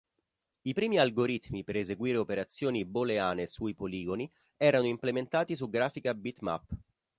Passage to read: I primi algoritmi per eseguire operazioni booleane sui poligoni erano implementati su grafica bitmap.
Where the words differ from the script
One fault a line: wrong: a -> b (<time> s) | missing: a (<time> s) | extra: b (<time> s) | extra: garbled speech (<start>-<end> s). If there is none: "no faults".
no faults